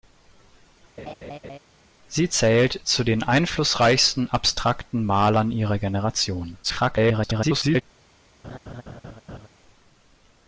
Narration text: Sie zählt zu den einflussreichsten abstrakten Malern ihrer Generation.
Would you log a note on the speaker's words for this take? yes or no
yes